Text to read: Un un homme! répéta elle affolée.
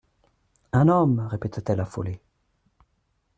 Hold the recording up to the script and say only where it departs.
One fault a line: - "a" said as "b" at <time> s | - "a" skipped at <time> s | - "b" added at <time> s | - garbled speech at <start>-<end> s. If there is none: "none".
- "un" skipped at 0.9 s
- "t" added at 1.6 s